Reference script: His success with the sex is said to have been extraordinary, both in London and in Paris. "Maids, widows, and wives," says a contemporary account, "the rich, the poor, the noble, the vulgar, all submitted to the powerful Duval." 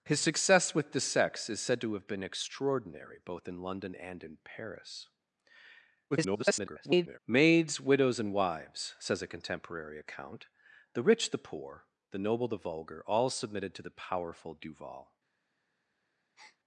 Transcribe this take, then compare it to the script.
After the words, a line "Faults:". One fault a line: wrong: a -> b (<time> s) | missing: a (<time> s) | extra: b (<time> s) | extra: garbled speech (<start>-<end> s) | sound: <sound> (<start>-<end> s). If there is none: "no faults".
His success with the sex is said to have been extraordinary, both in London and in Paris. [garbled] "Maids, widows, and wives," says a contemporary account, "the rich, the poor, the noble, the vulgar, all submitted to the powerful Duval."
Faults:
extra: garbled speech (6.1-7.2 s)
sound: breath (16.4-16.6 s)